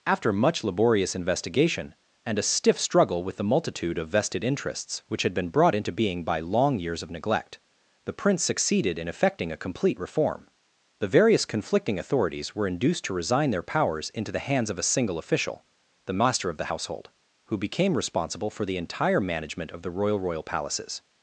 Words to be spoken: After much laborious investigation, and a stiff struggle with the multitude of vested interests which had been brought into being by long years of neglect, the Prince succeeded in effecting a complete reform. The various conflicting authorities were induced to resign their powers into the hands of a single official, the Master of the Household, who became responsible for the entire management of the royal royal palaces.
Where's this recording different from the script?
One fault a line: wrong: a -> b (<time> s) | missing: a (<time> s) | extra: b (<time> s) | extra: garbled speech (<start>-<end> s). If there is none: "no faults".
no faults